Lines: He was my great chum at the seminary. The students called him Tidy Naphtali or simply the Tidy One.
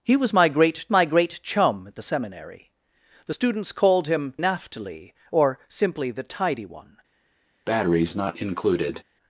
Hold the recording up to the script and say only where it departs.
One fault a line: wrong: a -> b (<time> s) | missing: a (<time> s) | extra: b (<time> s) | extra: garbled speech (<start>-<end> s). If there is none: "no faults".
extra: my great (0.9 s)
missing: Tidy (4.3 s)